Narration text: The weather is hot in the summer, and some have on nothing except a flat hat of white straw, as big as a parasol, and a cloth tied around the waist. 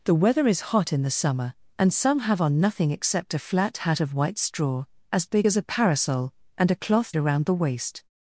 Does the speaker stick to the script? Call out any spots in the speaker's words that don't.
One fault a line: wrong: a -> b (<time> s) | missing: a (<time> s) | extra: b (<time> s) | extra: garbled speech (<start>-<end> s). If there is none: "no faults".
missing: tied (7.2 s)